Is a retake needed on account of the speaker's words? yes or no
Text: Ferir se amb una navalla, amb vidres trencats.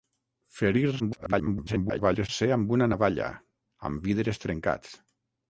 yes